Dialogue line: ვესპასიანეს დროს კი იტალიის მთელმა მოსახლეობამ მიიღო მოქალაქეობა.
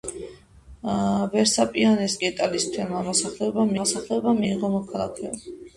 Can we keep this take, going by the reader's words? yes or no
no